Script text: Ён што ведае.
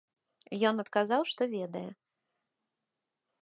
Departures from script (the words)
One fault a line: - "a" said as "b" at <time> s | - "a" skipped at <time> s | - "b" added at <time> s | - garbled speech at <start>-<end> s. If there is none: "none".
- "адказаў" added at 0.8 s